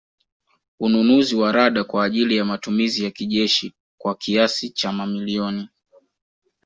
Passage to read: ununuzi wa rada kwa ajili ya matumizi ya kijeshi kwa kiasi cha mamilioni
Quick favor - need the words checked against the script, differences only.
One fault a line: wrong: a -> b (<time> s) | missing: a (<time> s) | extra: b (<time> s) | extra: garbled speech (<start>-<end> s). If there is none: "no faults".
no faults